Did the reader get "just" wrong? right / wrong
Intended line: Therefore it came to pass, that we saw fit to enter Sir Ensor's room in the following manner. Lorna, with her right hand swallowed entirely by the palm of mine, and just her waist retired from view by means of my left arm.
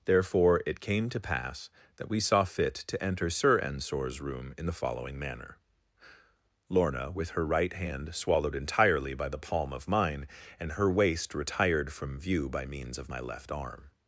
wrong